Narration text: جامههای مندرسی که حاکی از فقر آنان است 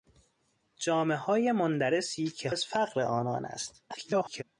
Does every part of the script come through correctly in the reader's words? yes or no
no